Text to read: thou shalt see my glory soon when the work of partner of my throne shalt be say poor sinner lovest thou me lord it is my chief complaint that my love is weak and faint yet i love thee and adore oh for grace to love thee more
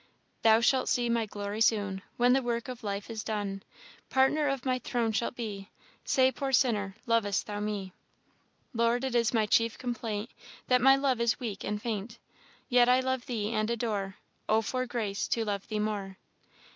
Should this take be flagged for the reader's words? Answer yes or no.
yes